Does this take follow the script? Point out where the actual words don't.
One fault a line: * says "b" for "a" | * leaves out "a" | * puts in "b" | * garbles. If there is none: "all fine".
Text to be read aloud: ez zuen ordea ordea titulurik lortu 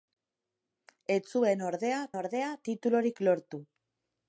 all fine